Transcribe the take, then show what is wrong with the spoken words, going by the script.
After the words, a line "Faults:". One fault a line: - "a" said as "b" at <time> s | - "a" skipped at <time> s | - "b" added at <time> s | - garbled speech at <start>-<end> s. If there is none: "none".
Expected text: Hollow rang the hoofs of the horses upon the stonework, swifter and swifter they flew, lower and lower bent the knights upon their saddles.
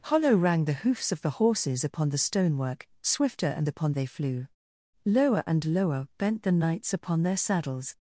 Hollow rang the hoofs of the horses upon the stonework, swifter and upon they flew, lower and lower bent the knights upon their saddles.
Faults:
- "swifter" said as "upon" at 3.7 s